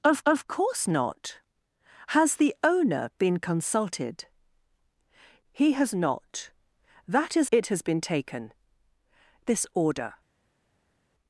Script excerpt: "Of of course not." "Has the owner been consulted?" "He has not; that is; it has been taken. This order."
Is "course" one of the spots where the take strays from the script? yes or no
no